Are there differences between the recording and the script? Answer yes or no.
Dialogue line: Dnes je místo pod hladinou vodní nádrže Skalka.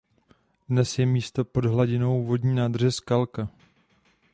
no